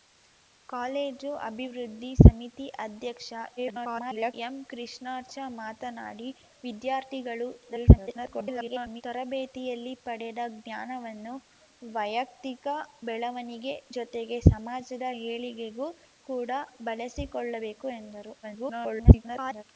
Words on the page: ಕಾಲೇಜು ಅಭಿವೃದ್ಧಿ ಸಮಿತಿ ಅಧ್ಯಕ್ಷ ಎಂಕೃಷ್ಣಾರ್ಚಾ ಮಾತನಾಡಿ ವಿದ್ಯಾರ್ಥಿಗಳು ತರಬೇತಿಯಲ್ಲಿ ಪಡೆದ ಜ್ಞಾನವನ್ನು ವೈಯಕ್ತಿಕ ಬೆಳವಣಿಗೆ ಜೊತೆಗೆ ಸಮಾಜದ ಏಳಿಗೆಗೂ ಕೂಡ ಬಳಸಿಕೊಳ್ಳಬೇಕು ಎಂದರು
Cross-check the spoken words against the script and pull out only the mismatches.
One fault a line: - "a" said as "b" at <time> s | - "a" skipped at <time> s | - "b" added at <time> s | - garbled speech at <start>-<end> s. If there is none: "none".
- garbled speech at 3.6-4.3 s
- garbled speech at 7.6-9.0 s
- garbled speech at 18.4-19.6 s